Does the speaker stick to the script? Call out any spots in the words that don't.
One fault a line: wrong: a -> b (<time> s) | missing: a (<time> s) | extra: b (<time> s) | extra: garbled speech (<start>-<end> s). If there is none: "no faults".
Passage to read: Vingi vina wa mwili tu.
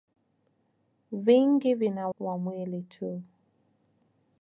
no faults